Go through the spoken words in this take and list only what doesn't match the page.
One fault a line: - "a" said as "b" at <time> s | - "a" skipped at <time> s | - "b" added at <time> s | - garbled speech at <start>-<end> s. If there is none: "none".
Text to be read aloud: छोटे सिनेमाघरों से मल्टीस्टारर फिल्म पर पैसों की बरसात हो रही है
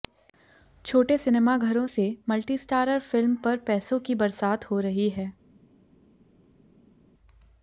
none